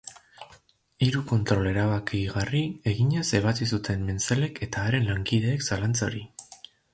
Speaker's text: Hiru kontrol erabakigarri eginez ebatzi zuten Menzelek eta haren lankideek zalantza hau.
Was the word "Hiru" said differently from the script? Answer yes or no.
no